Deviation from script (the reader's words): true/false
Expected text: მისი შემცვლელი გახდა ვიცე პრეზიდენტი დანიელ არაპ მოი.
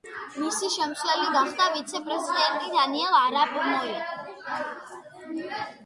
false